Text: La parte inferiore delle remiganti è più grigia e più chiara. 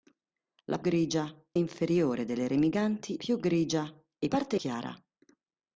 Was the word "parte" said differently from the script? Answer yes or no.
yes